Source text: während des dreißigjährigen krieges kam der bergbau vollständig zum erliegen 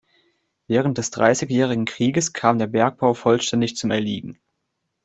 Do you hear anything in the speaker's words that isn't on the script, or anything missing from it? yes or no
no